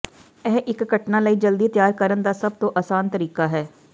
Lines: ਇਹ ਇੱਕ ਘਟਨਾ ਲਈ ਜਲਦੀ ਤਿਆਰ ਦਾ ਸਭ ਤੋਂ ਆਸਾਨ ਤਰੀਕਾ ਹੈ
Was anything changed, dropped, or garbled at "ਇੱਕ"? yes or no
no